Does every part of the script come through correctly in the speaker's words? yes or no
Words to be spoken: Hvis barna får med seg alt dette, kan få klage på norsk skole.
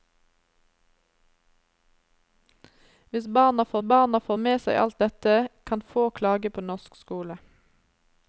no